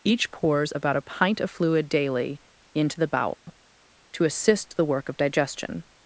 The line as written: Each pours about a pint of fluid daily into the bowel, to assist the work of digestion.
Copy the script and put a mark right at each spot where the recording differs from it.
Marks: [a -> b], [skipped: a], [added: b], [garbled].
Each pours about a pint of fluid daily into the bowel, to assist the work of digestion.